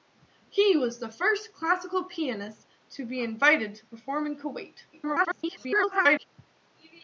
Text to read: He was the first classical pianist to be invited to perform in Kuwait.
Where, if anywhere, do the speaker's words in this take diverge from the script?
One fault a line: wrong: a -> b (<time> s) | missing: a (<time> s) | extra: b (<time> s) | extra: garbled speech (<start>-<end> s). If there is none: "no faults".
extra: garbled speech (4.9-6.2 s)